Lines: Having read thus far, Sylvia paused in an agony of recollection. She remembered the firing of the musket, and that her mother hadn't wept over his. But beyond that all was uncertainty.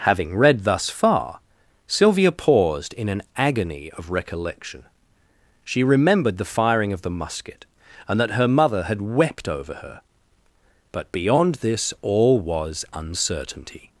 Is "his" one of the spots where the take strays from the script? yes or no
yes